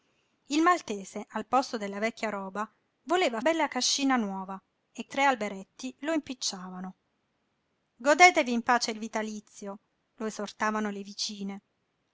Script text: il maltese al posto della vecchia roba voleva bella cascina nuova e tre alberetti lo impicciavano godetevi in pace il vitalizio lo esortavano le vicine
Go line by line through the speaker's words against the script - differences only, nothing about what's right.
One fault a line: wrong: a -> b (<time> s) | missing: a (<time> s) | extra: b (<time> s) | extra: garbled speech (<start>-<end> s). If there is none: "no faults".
no faults